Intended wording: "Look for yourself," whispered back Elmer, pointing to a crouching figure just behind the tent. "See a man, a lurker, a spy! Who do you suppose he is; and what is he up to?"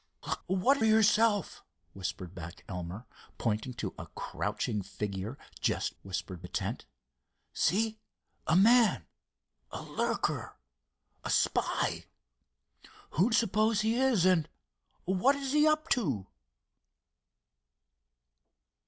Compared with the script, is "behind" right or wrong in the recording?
wrong